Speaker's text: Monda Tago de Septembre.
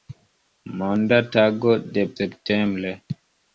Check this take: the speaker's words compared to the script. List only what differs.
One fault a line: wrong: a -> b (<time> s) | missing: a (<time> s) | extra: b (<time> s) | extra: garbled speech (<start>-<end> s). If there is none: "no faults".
no faults